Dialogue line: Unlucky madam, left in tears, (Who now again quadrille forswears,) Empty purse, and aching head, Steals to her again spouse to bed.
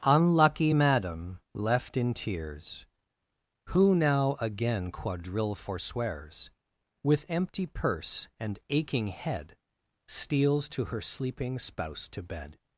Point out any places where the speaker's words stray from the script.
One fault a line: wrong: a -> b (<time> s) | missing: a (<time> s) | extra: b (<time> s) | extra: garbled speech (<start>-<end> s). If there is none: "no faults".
extra: With (7.0 s)
wrong: again -> sleeping (11.0 s)